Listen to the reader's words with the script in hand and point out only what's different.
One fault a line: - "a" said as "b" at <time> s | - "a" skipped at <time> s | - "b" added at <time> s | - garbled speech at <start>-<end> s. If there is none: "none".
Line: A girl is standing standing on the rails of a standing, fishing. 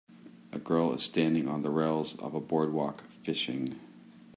- "standing" skipped at 1.5 s
- "standing" said as "boardwalk" at 2.4 s